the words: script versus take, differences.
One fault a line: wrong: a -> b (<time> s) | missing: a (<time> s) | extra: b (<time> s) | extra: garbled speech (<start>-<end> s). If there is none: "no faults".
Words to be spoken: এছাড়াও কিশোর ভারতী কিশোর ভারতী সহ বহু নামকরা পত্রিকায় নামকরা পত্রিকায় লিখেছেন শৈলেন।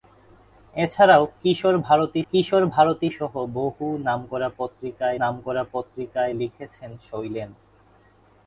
no faults